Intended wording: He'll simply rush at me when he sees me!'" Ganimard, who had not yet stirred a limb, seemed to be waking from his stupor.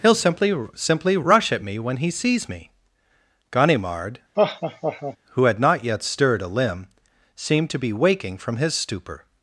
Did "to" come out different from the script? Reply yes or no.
no